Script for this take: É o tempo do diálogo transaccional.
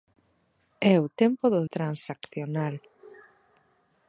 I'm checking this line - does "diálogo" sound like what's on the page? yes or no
no